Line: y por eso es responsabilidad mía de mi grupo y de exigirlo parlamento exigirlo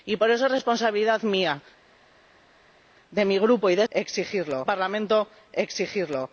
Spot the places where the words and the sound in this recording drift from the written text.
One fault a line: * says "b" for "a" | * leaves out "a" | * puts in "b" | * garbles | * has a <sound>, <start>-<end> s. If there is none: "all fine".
all fine